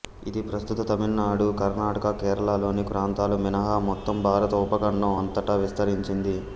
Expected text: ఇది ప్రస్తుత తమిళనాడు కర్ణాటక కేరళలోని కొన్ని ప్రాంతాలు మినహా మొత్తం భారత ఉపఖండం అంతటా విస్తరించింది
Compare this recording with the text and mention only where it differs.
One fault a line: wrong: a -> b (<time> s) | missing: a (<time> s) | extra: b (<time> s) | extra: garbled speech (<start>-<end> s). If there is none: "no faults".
missing: కొన్ని (2.9 s)